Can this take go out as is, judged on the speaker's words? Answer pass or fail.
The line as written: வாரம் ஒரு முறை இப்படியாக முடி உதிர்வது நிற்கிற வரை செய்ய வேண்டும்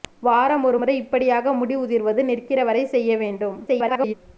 fail